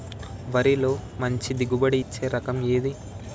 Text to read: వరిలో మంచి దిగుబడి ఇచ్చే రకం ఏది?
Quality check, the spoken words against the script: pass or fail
pass